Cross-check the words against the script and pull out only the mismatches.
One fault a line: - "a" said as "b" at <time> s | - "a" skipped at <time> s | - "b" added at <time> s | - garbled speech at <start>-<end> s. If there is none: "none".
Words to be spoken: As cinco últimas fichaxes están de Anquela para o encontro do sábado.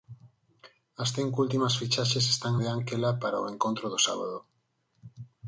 none